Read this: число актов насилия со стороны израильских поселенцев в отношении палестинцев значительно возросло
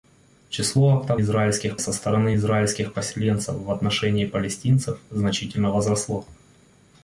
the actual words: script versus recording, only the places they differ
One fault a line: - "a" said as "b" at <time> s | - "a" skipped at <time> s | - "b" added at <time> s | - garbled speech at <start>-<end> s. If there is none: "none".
- "насилия" said as "израильских" at 1.2 s